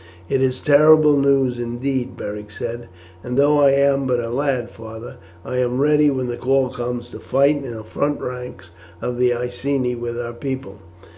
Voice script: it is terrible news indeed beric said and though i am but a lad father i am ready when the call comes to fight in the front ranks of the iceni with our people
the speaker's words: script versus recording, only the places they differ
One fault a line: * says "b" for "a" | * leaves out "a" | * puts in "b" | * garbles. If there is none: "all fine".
all fine